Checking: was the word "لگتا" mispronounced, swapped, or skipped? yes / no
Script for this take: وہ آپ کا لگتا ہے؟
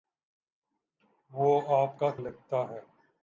no